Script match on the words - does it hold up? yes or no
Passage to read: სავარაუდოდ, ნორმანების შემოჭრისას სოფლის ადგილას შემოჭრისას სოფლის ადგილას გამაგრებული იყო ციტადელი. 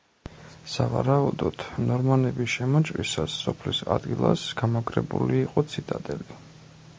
no